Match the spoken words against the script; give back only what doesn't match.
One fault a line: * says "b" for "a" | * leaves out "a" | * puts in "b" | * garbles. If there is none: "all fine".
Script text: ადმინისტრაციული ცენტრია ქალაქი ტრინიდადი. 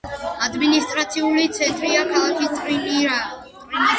all fine